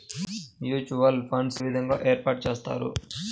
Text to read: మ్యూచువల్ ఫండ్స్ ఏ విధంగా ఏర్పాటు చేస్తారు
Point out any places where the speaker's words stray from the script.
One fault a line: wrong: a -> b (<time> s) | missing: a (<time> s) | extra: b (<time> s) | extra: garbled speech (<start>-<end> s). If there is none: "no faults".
missing: ఏ (1.6 s)